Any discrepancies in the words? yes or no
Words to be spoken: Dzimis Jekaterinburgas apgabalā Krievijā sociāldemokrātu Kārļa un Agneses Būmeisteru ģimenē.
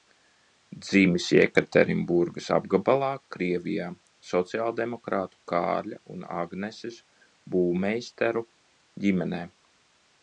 no